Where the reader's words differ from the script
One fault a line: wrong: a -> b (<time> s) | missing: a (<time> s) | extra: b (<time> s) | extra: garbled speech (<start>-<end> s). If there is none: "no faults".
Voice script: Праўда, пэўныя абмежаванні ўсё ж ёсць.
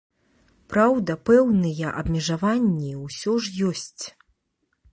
no faults